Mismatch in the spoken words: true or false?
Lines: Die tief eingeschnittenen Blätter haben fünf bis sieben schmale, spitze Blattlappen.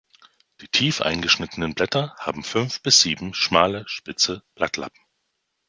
false